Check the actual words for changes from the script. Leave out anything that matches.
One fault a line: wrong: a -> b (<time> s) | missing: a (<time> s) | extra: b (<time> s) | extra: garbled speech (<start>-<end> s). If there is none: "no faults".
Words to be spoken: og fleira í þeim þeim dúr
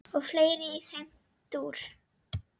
missing: þeim (1.1 s)